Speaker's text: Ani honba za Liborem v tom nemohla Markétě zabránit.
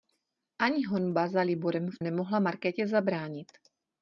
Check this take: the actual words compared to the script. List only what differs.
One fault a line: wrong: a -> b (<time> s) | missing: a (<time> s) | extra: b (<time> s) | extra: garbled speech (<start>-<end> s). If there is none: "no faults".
missing: tom (2.0 s)